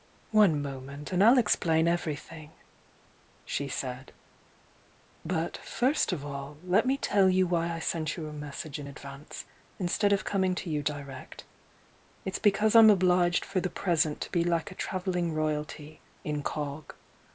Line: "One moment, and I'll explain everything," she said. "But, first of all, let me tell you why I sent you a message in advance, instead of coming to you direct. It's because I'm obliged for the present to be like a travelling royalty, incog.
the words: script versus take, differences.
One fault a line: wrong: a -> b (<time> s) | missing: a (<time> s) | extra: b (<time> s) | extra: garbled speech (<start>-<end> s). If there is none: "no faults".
no faults